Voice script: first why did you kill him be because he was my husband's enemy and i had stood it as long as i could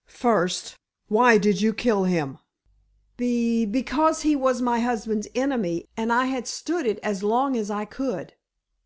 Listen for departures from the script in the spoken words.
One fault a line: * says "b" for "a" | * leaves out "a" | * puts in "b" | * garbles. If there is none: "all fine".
all fine